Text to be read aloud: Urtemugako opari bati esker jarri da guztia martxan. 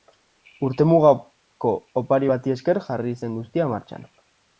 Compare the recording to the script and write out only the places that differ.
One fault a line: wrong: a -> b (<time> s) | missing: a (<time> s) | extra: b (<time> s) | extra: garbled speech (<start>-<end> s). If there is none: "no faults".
wrong: da -> zen (3.2 s)